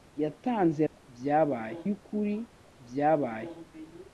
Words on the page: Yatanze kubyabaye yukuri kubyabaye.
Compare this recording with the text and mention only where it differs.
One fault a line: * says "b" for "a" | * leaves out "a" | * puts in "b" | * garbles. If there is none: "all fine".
all fine